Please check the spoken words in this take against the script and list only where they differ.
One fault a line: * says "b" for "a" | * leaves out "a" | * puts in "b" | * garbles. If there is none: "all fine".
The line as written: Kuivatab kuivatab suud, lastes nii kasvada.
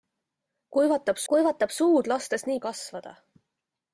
all fine